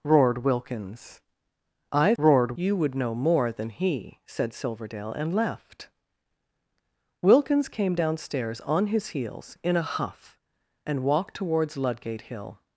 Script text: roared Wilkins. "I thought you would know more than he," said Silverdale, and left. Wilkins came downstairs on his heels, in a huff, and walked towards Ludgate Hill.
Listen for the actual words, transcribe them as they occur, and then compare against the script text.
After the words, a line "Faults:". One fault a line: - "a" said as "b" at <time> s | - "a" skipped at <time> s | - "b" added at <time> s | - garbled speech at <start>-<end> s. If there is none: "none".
roared Wilkins. "I roared you would know more than he," said Silverdale, and left. Wilkins came downstairs on his heels, in a huff, and walked towards Ludgate Hill.
Faults:
- "thought" said as "roared" at 2.2 s